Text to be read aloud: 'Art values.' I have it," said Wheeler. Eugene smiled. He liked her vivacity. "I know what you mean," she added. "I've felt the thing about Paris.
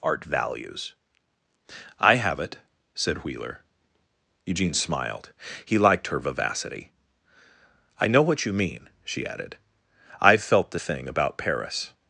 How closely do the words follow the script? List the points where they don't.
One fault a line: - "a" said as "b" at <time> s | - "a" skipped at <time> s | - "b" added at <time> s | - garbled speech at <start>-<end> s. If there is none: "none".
none